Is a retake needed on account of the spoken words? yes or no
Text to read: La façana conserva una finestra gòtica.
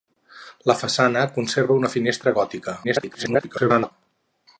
yes